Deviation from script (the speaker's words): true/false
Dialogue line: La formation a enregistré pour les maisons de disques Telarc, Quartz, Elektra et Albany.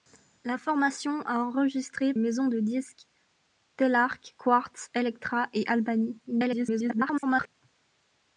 true